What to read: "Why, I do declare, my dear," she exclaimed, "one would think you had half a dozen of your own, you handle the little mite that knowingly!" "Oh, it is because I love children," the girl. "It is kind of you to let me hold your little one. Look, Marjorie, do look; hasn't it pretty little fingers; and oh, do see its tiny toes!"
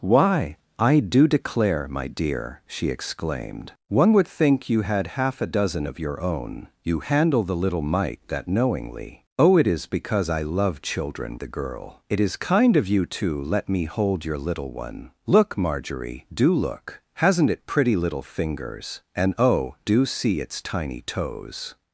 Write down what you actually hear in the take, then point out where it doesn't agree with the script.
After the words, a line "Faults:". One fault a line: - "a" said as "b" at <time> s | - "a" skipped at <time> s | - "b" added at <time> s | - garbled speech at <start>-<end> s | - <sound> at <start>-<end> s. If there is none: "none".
"Why, I do declare, my dear," she exclaimed, "one would think you had half a dozen of your own, you handle the little mite that knowingly!" "Oh, it is because I love children," the girl. "It is kind of you to let me hold your little one. Look, Marjorie, do look; hasn't it pretty little fingers; and oh, do see its tiny toes!"
Faults:
none